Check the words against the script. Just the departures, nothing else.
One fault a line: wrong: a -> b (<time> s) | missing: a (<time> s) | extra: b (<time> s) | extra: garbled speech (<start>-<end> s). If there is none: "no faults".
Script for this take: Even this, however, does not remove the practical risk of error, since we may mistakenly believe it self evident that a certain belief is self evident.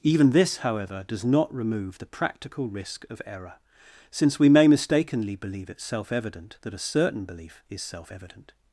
no faults